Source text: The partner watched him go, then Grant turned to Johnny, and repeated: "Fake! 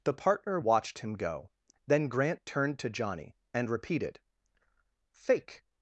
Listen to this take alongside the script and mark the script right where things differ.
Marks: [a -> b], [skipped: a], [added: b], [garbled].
The partner watched him go, then Grant turned to Johnny, and repeated: "Fake!